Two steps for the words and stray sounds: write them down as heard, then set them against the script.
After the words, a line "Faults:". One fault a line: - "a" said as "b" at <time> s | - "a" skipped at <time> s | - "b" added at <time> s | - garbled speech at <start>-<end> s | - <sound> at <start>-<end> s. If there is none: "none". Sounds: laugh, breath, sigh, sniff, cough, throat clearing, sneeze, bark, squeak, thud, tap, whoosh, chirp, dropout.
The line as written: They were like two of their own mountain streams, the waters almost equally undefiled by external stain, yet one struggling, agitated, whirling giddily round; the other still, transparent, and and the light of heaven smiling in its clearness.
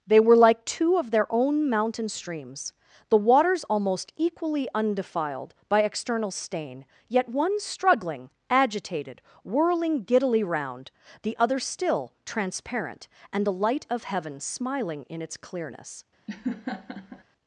They were like two of their own mountain streams, the waters almost equally undefiled by external stain, yet one struggling, agitated, whirling giddily round; the other still, transparent, and the light of heaven smiling in its clearness.
Faults:
- "and" skipped at 13.4 s
- laugh at 16.3-17.2 s